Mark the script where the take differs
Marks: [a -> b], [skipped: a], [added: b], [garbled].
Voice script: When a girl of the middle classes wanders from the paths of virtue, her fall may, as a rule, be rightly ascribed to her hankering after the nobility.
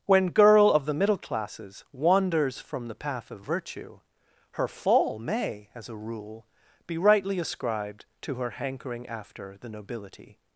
When [skipped: a] girl of the middle classes wanders from the [paths -> path] of virtue, her fall may, as a rule, be rightly ascribed to her hankering after the nobility.